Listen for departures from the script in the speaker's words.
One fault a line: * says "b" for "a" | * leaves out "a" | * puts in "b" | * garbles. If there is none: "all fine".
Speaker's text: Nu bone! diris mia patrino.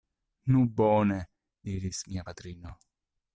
all fine